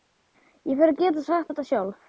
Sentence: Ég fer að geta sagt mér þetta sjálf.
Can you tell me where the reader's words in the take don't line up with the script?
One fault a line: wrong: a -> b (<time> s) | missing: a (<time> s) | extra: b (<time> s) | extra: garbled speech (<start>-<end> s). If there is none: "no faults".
missing: mér (1.5 s)